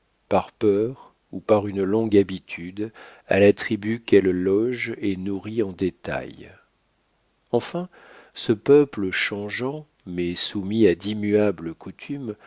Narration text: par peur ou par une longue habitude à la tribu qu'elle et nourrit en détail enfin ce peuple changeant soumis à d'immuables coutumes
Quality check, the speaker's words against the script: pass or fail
fail